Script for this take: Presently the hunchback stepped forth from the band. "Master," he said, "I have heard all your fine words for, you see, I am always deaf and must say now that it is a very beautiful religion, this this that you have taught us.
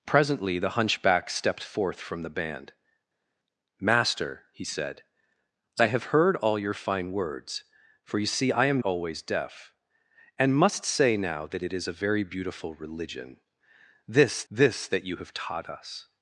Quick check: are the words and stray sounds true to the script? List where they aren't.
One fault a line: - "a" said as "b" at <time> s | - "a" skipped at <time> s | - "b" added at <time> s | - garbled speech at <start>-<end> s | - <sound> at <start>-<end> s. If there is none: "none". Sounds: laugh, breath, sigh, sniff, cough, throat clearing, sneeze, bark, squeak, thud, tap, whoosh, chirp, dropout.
none